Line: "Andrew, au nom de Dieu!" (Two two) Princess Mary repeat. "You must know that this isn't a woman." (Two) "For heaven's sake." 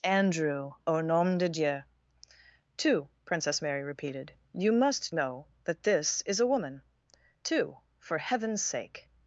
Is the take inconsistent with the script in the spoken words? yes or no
yes